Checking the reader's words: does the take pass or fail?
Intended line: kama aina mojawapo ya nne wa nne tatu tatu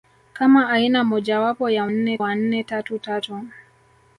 pass